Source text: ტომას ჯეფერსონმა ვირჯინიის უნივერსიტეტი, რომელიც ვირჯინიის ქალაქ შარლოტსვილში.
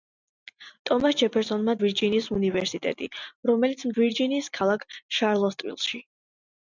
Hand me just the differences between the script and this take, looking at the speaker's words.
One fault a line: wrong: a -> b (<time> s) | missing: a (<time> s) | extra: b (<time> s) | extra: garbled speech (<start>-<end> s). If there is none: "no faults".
no faults